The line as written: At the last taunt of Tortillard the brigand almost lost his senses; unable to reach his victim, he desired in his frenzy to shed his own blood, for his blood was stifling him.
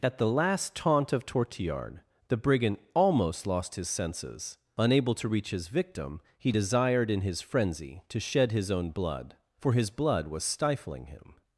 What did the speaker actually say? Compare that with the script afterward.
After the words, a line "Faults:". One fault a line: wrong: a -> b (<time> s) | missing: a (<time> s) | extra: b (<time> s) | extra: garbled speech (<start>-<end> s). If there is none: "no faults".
At the last taunt of Tortillard the brigand almost lost his senses; unable to reach his victim, he desired in his frenzy to shed his own blood, for his blood was stifling him.
Faults:
no faults